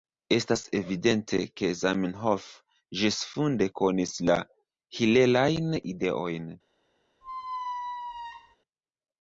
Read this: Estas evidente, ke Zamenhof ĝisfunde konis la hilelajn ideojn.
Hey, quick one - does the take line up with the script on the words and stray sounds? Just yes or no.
no